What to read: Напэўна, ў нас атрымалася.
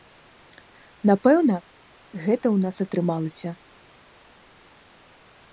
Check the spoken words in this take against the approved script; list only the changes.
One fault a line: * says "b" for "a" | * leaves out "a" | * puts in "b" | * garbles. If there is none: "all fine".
* puts in "гэта"